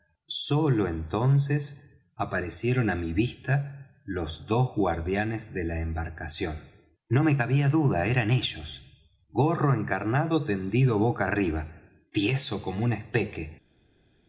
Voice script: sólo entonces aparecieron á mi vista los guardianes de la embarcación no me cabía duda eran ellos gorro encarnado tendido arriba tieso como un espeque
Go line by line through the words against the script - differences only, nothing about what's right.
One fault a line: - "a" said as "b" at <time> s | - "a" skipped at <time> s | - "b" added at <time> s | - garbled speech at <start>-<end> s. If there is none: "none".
- "dos" added at 4.5 s
- "boca" added at 11.0 s